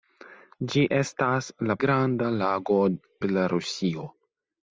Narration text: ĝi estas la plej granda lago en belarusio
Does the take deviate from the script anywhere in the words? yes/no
yes